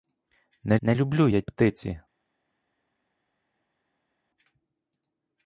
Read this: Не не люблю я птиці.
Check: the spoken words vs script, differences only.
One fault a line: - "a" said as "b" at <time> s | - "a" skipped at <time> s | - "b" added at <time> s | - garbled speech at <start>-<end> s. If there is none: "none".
none